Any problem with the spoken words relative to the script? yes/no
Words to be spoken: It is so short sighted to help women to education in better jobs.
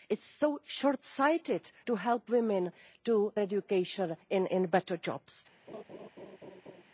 no